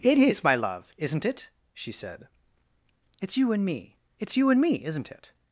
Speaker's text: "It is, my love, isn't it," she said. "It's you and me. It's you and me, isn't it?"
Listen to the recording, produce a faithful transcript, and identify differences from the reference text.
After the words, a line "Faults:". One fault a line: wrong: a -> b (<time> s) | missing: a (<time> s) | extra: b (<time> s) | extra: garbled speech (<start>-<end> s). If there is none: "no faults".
"It is, my love, isn't it," she said. "It's you and me. It's you and me, isn't it?"
Faults:
no faults